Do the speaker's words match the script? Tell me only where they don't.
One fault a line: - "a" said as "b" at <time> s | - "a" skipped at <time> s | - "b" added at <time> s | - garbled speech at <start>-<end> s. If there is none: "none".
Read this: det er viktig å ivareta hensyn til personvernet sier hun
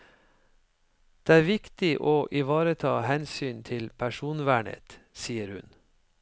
none